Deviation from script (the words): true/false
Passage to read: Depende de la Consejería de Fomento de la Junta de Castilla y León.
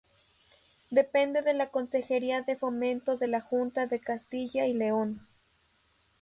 false